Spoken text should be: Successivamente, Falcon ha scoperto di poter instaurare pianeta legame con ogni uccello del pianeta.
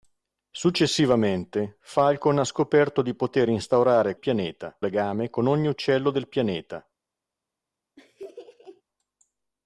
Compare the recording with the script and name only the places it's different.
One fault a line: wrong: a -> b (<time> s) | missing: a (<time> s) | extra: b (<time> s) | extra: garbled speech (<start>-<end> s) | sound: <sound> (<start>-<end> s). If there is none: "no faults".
sound: laugh (8.0-8.8 s)